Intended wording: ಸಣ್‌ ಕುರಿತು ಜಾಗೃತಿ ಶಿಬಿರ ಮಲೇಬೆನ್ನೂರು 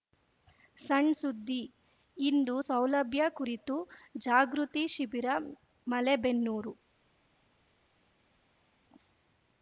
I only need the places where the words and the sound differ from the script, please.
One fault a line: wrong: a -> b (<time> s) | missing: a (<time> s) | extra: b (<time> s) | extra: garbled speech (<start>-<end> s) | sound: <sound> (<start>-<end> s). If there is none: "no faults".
extra: ಸುದ್ದಿ ಇಂದು ಸೌಲಭ್ಯ (1.1 s)